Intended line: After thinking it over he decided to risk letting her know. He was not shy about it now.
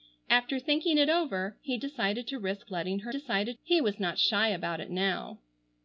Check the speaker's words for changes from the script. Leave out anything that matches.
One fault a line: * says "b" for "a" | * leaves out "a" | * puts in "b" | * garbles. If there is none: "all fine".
* says "decided" for "know"